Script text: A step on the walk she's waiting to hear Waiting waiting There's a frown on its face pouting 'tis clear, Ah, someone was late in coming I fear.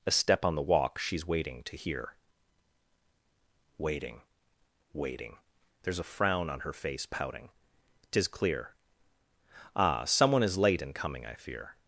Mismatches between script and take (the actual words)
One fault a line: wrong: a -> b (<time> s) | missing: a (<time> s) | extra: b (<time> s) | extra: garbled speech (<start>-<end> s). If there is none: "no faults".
wrong: its -> her (6.6 s)
wrong: was -> is (10.4 s)